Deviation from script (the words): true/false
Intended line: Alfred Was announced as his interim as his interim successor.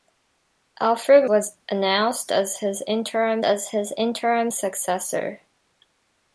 false